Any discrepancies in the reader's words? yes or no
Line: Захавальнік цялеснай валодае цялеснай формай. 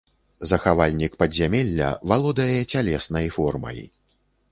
yes